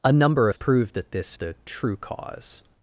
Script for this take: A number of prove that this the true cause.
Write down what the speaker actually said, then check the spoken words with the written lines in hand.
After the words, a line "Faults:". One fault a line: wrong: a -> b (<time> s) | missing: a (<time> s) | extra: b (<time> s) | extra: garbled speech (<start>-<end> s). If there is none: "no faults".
A number of prove that this the true cause.
Faults:
no faults